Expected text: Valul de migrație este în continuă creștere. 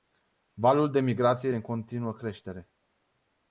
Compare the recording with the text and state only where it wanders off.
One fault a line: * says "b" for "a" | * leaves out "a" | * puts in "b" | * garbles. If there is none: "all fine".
* leaves out "este"